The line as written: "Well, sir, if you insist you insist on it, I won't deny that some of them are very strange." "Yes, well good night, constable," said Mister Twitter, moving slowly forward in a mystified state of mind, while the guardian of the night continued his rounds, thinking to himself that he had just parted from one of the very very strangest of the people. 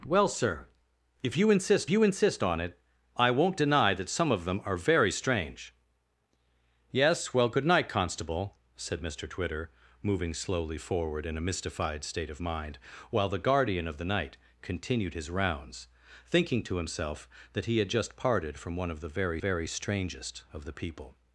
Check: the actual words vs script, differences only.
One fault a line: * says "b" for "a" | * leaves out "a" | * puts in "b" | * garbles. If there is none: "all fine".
all fine